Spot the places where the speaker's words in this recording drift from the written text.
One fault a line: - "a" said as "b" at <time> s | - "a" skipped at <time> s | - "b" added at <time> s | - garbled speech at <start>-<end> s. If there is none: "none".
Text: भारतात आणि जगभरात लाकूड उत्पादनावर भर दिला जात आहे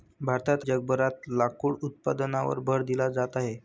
- "आणि" skipped at 0.7 s